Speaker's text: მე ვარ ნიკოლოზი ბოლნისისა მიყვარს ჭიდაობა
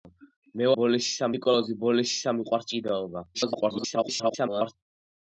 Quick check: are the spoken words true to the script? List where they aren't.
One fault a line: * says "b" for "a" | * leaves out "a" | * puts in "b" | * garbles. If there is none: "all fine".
* says "ბოლნისისა" for "ვარ"
* garbles